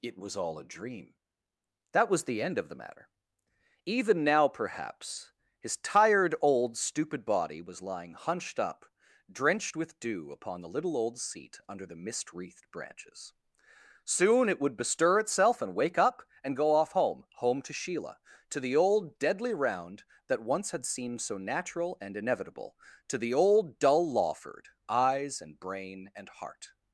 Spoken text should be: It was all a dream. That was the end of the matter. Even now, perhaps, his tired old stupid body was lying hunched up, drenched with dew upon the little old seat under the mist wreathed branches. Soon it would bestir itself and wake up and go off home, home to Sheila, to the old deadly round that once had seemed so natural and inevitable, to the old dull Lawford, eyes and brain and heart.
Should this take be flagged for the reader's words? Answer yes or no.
no